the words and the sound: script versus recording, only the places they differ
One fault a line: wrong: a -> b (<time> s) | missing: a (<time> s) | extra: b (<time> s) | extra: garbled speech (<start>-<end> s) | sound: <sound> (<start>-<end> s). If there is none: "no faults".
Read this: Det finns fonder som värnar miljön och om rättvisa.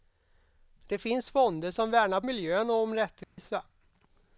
sound: dropout (3.2-3.4 s)